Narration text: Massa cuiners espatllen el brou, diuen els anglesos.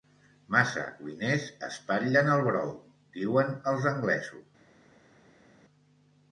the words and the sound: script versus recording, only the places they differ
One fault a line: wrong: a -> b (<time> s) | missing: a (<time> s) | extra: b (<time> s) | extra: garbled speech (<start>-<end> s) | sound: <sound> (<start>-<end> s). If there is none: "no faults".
no faults